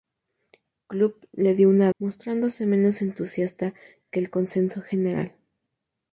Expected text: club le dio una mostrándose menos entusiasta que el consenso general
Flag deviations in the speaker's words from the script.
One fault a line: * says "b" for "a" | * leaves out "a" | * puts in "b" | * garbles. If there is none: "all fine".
all fine